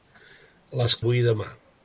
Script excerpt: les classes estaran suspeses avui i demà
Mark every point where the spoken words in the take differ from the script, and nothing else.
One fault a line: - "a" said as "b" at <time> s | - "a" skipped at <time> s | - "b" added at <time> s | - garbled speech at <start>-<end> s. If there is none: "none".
- "classes estaran suspeses" skipped at 0.9 s